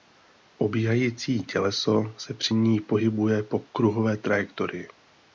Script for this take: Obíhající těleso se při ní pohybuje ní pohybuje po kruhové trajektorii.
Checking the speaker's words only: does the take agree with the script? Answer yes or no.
no